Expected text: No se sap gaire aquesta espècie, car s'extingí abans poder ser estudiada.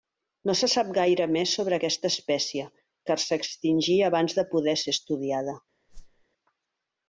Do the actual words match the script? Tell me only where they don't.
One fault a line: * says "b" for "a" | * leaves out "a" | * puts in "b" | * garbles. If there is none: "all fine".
* puts in "més sobre"
* puts in "de"